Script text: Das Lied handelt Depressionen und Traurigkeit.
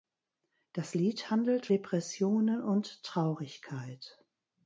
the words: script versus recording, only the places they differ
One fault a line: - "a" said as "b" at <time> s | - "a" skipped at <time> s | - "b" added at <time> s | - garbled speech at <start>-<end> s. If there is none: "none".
none